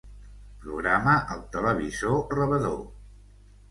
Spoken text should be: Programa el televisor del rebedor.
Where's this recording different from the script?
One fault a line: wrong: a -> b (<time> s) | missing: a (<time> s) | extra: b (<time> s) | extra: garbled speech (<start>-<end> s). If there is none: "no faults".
missing: del (2.2 s)